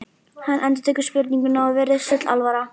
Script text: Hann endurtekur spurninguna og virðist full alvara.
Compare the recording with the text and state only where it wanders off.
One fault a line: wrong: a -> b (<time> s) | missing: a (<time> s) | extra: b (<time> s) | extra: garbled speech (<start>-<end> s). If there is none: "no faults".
no faults